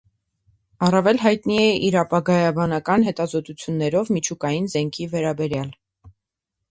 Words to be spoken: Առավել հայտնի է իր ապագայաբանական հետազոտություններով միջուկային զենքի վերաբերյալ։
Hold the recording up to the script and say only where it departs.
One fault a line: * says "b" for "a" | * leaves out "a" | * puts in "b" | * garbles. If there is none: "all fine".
all fine